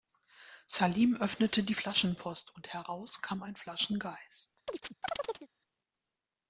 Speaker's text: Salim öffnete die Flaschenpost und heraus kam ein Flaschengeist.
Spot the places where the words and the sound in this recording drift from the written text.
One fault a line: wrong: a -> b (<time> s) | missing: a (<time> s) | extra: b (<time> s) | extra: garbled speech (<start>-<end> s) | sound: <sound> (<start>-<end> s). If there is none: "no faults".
sound: chirp (4.7-5.5 s)